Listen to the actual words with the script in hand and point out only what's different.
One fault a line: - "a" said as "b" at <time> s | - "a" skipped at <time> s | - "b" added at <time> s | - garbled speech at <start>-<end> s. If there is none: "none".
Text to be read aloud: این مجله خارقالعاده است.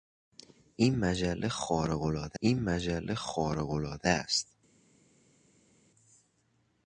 - "این مجله خارقالعاده" added at 2.4 s